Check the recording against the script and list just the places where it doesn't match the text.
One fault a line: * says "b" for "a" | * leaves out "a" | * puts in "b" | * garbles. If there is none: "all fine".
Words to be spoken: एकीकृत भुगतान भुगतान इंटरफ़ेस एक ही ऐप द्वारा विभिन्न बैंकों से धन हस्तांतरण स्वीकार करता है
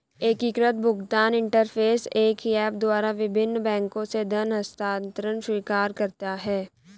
* leaves out "भुगतान"